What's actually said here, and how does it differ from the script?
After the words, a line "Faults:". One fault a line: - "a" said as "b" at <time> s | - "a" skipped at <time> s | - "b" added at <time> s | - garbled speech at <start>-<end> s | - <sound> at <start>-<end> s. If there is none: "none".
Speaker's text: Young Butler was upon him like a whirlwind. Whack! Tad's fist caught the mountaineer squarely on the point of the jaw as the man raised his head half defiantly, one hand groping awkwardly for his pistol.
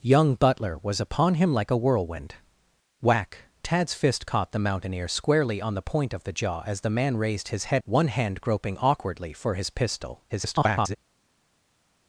Young Butler was upon him like a whirlwind. Whack! Tad's fist caught the mountaineer squarely on the point of the jaw as the man raised his head one hand groping awkwardly for his pistol. [garbled]
Faults:
- "half defiantly" skipped at 7.8 s
- garbled speech at 10.3-11.0 s